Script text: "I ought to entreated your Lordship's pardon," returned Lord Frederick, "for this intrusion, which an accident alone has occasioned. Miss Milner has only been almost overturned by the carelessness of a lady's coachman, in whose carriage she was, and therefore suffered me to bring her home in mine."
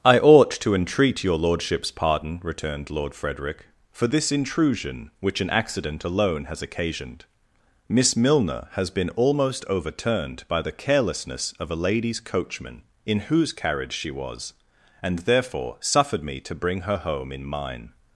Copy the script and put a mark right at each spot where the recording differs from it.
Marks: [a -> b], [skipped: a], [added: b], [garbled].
"I ought to [entreated -> entreat] your Lordship's pardon," returned Lord Frederick, "for this intrusion, which an accident alone has occasioned. Miss Milner has [skipped: only] been almost overturned by the carelessness of a lady's coachman, in whose carriage she was, and therefore suffered me to bring her home in mine."